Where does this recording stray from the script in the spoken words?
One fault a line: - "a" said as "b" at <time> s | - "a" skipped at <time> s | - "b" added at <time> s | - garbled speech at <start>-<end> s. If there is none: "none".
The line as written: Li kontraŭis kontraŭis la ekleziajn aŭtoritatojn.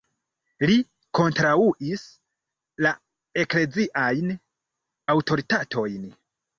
- "kontraŭis" skipped at 2.0 s